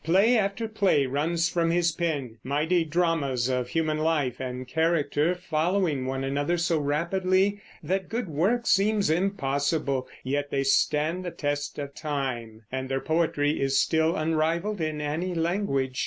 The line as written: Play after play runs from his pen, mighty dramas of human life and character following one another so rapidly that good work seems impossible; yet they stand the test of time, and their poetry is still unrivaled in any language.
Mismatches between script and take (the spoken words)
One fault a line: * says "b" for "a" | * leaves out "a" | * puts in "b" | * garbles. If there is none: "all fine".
all fine